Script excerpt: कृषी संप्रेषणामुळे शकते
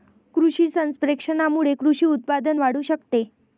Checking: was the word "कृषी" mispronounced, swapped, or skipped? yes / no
no